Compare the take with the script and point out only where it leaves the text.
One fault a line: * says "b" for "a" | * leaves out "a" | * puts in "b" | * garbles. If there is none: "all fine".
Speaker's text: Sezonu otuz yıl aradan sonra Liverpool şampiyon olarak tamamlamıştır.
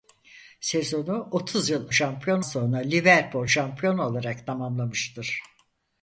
* says "şampiyon" for "aradan"